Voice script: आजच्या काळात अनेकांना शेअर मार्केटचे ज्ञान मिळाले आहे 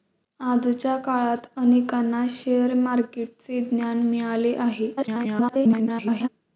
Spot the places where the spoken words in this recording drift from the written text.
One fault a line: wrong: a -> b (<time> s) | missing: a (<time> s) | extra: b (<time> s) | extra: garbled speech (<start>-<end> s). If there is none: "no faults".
extra: garbled speech (5.0-6.3 s)